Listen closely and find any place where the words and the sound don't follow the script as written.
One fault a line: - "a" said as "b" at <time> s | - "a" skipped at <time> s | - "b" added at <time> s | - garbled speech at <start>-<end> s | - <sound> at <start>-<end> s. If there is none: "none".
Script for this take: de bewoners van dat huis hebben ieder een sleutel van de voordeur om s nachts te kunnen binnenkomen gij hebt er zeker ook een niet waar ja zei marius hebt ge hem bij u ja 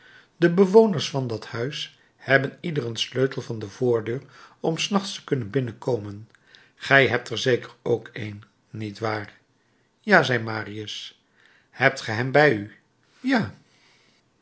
none